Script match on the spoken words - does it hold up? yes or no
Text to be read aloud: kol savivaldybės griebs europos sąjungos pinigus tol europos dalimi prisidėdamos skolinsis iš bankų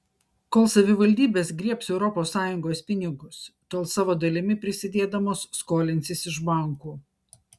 no